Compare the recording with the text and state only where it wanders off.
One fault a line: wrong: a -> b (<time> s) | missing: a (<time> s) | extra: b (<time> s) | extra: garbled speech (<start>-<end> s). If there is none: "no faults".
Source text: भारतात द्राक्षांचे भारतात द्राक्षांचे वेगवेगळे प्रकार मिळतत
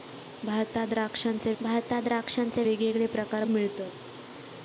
no faults